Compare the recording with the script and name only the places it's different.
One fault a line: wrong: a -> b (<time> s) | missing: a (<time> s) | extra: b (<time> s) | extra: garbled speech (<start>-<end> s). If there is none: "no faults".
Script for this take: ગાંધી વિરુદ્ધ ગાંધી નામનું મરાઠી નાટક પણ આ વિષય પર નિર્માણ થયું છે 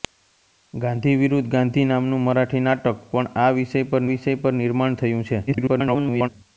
extra: વિષય પર (4.1 s)
extra: garbled speech (5.5-6.3 s)